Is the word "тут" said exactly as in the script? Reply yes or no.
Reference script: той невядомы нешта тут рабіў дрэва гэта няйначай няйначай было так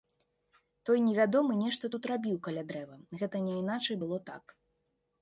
yes